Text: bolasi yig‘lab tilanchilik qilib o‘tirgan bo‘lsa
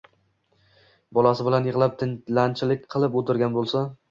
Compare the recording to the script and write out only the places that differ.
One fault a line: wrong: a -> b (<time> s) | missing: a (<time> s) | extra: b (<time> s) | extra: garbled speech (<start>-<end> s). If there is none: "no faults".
extra: bilan (1.5 s)